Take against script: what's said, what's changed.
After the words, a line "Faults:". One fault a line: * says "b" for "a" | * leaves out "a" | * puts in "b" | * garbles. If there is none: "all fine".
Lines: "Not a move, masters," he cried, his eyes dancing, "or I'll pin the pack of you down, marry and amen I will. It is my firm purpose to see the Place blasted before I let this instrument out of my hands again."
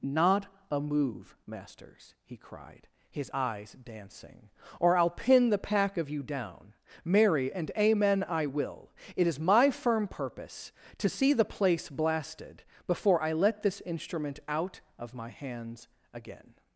"Not a move, masters," he cried, his eyes dancing, "or I'll pin the pack of you down, marry and amen I will. It is my firm purpose to see the Place blasted before I let this instrument out of my hands again."
Faults:
all fine